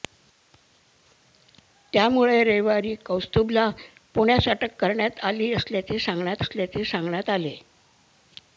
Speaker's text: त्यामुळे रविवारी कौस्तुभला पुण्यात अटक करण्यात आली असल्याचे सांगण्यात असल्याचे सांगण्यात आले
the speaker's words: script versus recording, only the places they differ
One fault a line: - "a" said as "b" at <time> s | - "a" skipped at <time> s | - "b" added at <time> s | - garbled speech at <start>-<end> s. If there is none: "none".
none